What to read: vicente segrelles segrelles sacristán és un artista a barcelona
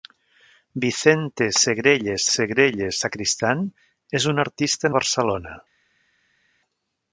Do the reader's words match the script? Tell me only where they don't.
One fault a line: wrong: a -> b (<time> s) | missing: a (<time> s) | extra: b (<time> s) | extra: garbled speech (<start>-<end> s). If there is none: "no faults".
no faults